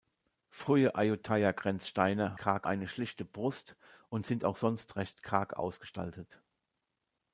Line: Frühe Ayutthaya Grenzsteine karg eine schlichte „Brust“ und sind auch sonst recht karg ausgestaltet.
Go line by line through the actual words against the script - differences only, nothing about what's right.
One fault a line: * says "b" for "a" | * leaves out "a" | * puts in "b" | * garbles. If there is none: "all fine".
all fine